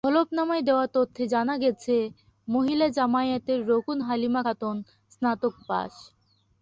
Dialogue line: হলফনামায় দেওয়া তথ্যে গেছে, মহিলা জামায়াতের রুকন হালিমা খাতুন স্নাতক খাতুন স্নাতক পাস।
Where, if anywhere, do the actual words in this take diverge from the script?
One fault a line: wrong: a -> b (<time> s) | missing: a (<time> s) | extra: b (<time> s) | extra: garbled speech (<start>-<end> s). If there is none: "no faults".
extra: জানা (1.3 s)
missing: খাতুন স্নাতক (5.5 s)